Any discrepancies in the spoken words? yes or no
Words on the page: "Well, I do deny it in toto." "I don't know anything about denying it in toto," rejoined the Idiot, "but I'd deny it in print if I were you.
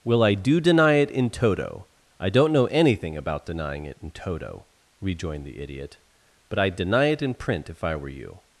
no